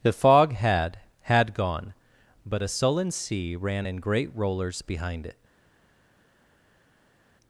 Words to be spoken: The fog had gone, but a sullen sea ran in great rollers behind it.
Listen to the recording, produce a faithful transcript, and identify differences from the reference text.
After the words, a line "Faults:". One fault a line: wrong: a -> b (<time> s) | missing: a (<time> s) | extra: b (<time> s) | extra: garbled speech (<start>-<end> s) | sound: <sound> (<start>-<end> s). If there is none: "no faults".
The fog had had gone, but a sullen sea ran in great rollers behind it.
Faults:
extra: had (1.2 s)